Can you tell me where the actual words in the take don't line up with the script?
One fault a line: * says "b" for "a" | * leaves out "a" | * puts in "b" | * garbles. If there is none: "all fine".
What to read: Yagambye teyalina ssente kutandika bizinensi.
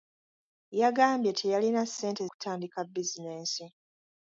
all fine